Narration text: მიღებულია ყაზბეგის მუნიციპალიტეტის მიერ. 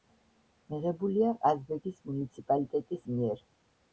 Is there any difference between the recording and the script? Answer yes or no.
no